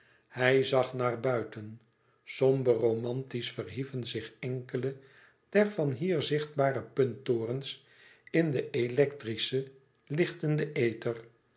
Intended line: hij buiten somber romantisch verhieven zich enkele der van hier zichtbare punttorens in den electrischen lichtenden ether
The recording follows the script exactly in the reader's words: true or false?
false